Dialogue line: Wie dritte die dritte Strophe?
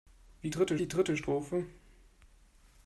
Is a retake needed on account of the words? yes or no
no